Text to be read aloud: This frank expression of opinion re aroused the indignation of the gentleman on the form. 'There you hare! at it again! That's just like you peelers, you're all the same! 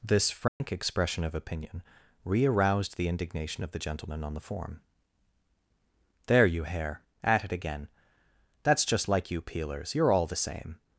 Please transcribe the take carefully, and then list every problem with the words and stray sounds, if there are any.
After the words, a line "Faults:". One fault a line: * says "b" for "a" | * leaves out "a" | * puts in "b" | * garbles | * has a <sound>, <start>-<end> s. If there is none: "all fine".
This frank expression of opinion re aroused the indignation of the gentleman on the form. 'There you hare! at it again! That's just like you peelers, you're all the same!
Faults:
* has a dropout, 0.5-0.6 s